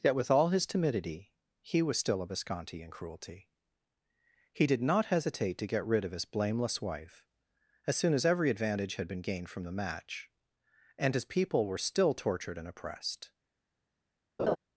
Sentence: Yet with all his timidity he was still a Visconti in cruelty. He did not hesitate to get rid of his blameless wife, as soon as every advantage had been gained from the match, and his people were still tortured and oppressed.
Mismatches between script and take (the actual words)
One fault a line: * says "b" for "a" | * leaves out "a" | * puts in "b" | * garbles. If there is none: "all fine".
all fine